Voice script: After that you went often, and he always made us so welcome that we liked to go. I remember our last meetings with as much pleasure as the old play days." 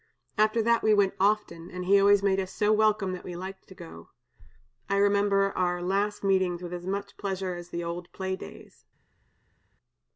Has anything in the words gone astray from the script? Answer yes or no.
yes